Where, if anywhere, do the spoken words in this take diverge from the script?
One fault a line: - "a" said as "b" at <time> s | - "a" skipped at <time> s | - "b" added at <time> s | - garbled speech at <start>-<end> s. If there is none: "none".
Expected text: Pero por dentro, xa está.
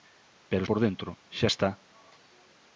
none